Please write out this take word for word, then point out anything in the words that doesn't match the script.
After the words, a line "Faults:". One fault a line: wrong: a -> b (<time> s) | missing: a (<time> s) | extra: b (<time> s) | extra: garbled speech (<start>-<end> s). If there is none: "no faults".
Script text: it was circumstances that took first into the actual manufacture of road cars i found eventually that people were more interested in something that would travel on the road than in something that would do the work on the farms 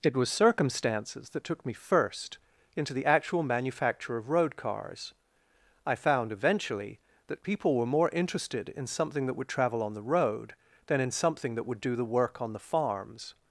it was circumstances that took me first into the actual manufacture of road cars i found eventually that people were more interested in something that would travel on the road than in something that would do the work on the farms
Faults:
extra: me (1.6 s)